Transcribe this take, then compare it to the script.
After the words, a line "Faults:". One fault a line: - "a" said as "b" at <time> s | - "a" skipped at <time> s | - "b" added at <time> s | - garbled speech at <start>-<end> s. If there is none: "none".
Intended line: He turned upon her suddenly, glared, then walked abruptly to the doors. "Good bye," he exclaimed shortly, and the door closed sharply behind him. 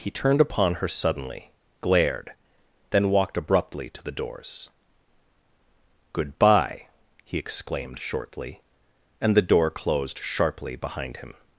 He turned upon her suddenly, glared, then walked abruptly to the doors. "Good bye," he exclaimed shortly, and the door closed sharply behind him.
Faults:
none